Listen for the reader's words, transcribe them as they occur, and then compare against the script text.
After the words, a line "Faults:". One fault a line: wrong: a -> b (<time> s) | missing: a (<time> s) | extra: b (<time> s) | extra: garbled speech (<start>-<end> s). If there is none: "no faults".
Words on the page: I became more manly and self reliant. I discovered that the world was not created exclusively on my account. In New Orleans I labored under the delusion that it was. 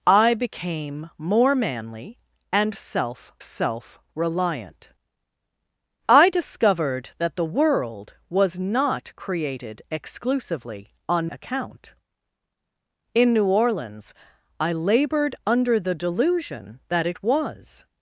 I became more manly and self self reliant. I discovered that the world was not created exclusively on account. In New Orleans I labored under the delusion that it was.
Faults:
extra: self (3.4 s)
missing: my (11.3 s)